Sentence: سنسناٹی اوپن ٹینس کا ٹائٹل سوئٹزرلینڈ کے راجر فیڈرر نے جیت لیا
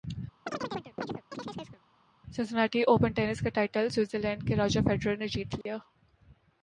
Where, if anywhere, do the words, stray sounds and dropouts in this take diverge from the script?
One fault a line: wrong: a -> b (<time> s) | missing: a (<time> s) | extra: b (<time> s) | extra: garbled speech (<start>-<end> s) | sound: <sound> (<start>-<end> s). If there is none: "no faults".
sound: chirp (0.5-1.8 s)
sound: dropout (5.6-5.7 s)